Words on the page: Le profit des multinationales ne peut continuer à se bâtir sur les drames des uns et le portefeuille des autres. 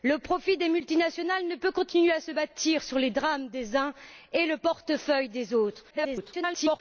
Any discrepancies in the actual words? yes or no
yes